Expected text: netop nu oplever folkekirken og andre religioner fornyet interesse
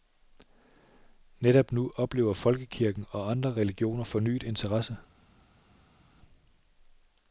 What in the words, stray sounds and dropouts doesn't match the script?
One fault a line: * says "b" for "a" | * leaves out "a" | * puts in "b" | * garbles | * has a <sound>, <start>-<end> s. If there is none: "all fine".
all fine